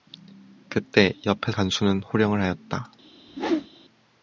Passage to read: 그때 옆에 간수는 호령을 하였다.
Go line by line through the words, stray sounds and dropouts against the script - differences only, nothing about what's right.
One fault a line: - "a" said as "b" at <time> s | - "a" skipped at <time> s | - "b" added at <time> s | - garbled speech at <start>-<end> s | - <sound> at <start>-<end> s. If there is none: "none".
- whoosh at 3.3-3.7 s